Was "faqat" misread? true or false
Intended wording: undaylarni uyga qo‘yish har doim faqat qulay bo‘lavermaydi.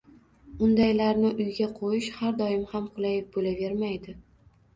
true